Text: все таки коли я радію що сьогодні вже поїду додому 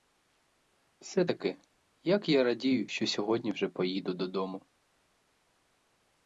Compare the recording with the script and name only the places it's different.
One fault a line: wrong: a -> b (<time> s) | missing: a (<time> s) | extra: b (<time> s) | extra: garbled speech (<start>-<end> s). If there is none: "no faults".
wrong: коли -> як (2.0 s)